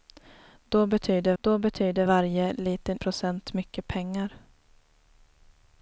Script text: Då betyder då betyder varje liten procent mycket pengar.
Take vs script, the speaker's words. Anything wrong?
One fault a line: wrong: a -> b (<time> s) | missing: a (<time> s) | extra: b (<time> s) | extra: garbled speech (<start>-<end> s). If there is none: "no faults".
no faults